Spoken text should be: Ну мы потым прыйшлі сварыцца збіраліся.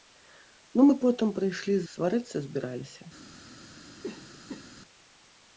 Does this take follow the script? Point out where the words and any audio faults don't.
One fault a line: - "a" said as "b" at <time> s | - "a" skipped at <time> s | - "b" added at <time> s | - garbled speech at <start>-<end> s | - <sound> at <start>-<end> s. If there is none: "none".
- cough at 4.0-4.8 s